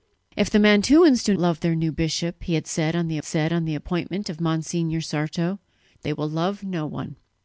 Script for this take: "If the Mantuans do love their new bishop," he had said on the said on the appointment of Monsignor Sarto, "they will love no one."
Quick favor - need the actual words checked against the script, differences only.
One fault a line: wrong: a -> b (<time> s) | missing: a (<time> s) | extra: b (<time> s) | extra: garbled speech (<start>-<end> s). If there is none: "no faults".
no faults